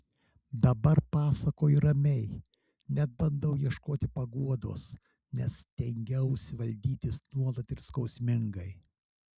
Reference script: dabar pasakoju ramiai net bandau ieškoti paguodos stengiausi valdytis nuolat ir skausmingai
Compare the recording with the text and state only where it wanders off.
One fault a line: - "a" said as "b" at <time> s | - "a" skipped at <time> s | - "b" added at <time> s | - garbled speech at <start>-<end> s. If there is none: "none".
- "nes" added at 5.4 s